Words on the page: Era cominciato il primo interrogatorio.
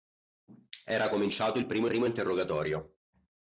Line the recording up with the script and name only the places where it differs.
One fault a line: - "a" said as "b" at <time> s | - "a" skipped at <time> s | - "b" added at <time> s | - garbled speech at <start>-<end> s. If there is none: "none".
- "primo" added at 1.8 s